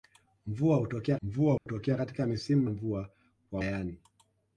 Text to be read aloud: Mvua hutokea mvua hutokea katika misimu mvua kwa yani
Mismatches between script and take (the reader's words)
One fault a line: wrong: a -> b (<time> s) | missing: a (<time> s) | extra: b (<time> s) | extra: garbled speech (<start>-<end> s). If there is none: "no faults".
no faults